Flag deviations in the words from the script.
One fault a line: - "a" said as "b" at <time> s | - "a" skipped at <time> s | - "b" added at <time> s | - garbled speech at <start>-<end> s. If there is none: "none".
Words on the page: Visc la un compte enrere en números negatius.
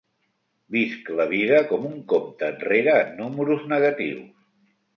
- "vida com" added at 1.3 s